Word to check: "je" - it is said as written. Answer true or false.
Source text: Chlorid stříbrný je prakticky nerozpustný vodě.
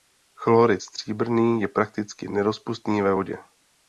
true